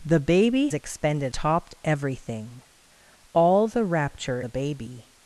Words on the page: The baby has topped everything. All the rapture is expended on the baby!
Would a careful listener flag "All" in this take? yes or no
no